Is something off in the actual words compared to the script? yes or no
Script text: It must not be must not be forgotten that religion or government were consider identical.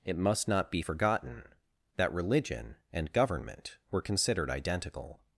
yes